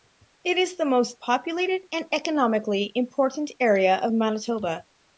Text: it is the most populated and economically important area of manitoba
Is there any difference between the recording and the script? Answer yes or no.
no